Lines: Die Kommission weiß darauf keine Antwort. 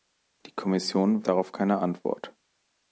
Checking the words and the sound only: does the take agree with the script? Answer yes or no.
no